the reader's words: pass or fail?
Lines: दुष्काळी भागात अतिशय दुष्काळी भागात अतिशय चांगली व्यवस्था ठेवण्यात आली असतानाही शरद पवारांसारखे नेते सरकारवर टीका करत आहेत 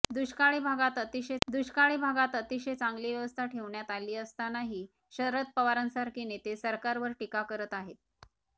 pass